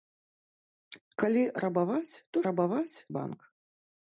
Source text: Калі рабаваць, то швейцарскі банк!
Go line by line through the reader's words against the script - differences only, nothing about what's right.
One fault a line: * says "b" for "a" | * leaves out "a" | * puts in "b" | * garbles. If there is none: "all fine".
* says "рабаваць" for "швейцарскі"